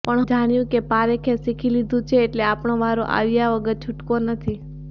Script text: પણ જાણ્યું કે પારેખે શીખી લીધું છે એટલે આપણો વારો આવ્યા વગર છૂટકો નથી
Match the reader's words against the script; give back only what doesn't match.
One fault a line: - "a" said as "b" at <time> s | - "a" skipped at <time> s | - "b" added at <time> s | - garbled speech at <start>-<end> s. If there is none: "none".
none